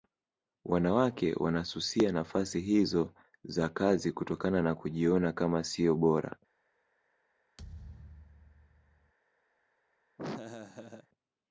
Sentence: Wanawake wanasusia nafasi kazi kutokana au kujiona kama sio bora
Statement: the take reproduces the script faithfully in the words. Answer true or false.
false